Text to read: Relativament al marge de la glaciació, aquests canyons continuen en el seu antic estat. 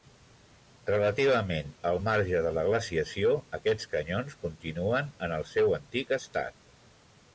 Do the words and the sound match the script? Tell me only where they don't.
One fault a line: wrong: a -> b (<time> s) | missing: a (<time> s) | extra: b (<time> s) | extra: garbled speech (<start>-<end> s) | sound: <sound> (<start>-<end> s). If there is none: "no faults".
no faults